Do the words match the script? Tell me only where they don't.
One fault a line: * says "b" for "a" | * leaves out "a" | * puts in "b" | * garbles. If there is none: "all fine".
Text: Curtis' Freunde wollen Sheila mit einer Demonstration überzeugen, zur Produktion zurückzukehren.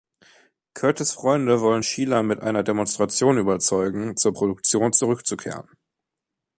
all fine